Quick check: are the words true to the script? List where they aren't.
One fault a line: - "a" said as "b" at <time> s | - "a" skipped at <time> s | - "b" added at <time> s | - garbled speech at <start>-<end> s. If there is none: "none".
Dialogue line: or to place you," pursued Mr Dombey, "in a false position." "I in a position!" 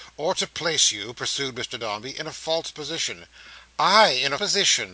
none